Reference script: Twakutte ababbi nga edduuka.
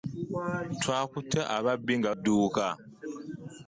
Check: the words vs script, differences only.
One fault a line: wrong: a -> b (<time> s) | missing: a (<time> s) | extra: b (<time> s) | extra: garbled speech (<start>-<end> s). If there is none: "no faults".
no faults